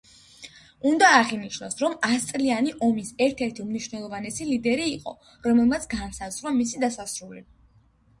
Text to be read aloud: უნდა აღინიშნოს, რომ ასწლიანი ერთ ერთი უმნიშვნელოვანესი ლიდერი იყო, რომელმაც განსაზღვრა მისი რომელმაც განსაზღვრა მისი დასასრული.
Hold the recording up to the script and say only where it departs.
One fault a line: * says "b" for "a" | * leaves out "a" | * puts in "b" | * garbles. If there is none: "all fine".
* puts in "ომის"
* leaves out "რომელმაც განსაზღვრა მისი"